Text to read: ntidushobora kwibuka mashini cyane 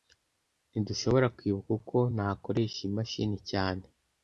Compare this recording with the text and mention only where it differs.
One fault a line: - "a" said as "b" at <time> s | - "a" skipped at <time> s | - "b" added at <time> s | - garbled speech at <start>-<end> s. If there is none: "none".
- "uko nakoresha iyi" added at 1.8 s